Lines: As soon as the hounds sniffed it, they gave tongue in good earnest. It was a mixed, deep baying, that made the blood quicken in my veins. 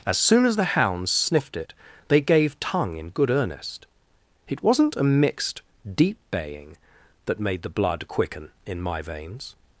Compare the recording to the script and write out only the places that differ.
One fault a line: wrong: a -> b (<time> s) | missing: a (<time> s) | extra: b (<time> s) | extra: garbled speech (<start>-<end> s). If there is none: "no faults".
wrong: was -> wasn't (4.6 s)